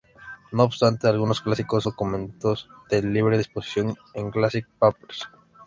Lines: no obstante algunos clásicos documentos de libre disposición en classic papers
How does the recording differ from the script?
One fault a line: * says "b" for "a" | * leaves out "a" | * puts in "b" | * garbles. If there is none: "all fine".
all fine